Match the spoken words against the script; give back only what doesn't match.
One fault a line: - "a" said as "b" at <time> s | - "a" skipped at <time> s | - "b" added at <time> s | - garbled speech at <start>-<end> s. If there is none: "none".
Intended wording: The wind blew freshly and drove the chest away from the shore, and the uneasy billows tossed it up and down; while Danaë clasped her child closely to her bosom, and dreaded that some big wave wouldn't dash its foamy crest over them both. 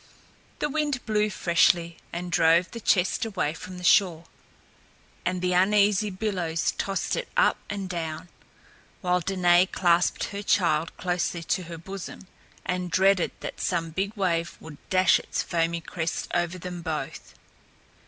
- "wouldn't" said as "would" at 14.6 s